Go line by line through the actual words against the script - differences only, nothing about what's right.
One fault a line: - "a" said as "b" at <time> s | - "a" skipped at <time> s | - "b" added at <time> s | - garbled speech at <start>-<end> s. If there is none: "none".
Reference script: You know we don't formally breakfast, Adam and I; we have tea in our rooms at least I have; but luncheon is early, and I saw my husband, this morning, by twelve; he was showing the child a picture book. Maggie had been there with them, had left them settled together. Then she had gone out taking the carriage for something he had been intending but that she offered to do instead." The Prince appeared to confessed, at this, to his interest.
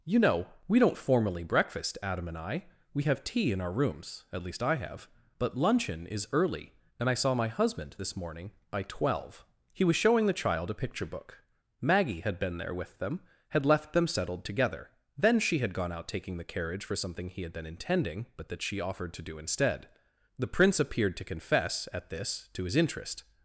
- "confessed" said as "confess" at 21.2 s